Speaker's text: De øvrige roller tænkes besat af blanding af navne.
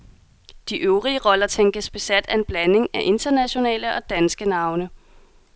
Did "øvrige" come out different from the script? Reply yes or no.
no